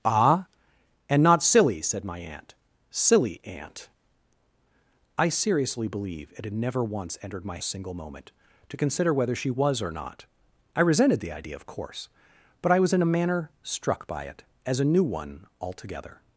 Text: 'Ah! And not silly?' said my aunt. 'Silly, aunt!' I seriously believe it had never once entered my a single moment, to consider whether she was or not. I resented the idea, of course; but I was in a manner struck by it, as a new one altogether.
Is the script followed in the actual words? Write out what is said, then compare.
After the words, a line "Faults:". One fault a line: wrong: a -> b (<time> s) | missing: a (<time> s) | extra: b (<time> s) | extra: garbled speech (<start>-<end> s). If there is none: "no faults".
'Ah! And not silly?' said my aunt. 'Silly, aunt!' I seriously believe it had never once entered my a single moment, to consider whether she was or not. I resented the idea, of course; but I was in a manner struck by it, as a new one altogether.
Faults:
no faults